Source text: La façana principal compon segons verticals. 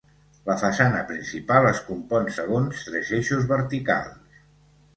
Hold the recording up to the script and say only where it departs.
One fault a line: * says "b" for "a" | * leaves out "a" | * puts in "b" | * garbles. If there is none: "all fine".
* puts in "es"
* puts in "tres eixos"